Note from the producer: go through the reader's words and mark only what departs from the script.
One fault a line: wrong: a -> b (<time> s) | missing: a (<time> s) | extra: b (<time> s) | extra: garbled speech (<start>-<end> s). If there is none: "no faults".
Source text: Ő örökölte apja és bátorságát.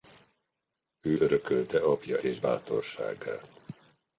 no faults